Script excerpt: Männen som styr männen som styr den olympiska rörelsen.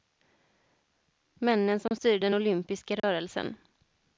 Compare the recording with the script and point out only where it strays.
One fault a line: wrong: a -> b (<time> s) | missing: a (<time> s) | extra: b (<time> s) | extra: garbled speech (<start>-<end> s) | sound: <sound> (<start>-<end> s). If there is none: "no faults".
sound: dropout (1.9-1.9 s)
missing: männen som styr (2.2 s)
sound: dropout (3.0-3.0 s)